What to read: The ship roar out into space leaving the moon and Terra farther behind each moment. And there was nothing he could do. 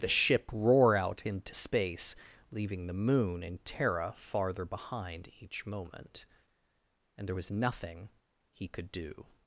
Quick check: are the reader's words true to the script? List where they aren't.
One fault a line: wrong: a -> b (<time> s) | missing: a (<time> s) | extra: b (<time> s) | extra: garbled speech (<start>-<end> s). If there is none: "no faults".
no faults